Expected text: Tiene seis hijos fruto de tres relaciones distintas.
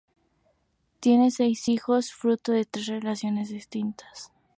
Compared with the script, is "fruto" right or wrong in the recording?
right